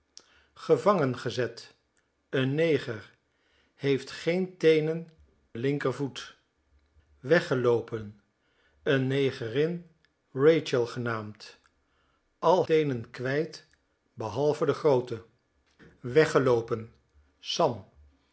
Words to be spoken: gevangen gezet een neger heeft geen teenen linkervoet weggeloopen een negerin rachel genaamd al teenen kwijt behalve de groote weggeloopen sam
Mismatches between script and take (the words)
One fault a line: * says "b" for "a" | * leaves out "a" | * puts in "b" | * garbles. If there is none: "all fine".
all fine